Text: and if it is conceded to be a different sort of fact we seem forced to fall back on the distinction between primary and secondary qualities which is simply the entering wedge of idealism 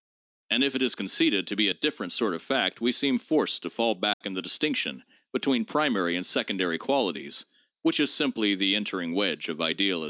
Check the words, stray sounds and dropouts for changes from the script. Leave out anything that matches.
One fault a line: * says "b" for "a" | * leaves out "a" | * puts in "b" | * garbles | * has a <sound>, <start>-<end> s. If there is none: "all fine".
* has a dropout, 4.1-4.2 s